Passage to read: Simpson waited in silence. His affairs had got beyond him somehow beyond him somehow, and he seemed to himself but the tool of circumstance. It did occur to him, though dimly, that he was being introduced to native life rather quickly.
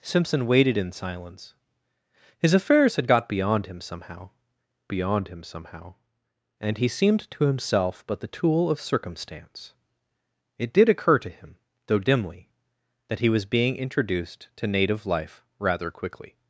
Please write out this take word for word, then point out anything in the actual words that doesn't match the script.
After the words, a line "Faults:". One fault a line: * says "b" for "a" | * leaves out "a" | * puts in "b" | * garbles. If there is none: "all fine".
Simpson waited in silence. His affairs had got beyond him somehow beyond him somehow, and he seemed to himself but the tool of circumstance. It did occur to him, though dimly, that he was being introduced to native life rather quickly.
Faults:
all fine